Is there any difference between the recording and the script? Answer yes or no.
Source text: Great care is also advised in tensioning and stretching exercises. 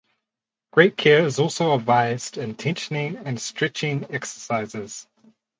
no